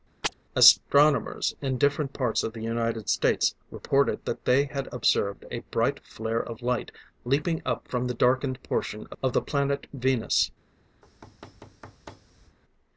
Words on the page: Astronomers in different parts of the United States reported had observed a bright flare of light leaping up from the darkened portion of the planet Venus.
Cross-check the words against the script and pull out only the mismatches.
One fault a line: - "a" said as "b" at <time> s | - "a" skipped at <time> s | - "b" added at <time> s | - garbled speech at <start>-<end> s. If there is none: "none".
- "that they" added at 4.3 s